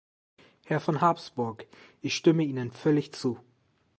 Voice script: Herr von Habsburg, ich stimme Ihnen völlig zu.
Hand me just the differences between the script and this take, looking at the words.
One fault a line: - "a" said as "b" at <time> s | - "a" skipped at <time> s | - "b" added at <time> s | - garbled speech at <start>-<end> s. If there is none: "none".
none